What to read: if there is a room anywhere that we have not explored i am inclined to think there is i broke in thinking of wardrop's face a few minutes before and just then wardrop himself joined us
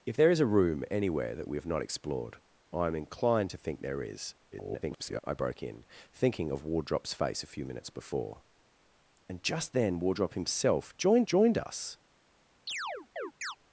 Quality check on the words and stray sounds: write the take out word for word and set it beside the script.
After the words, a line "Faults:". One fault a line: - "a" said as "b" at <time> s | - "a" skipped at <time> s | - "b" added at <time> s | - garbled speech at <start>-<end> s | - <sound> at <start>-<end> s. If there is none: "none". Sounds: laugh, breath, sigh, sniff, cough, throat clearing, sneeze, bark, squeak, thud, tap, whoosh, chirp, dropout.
if there is a room anywhere that we have not explored i am inclined to think there is [garbled] i broke in thinking of wardrop's face a few minutes before and just then wardrop himself joined joined us
Faults:
- garbled speech at 4.5-5.2 s
- "joined" added at 11.2 s
- chirp at 12.7-13.6 s